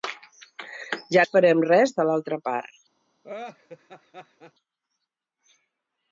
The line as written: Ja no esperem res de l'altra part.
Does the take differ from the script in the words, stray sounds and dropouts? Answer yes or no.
yes